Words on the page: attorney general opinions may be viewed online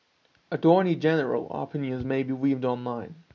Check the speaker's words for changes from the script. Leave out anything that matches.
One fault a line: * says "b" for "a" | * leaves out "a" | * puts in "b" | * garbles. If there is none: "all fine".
all fine